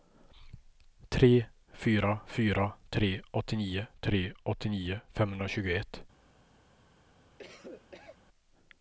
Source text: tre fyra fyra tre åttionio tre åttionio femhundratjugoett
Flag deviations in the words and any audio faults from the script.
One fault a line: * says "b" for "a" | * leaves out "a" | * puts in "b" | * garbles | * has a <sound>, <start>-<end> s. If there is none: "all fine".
* has a cough, 7.4-8.3 s